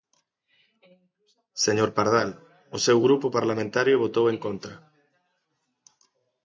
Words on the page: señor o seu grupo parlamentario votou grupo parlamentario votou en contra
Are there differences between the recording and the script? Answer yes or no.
yes